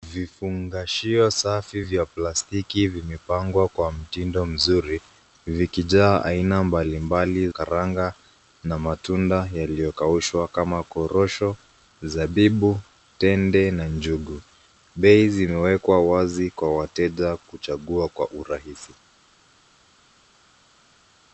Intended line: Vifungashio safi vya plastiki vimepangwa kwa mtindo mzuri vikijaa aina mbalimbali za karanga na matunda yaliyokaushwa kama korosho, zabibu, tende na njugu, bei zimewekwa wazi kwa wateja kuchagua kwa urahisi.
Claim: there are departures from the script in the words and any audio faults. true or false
true